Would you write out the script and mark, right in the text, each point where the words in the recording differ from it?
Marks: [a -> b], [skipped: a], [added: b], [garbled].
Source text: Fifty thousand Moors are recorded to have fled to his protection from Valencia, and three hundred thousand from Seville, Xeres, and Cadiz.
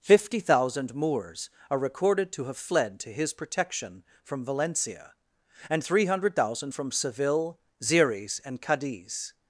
Fifty thousand Moors are recorded to have fled to his protection from Valencia, and three hundred thousand from Seville, Xeres, and Cadiz.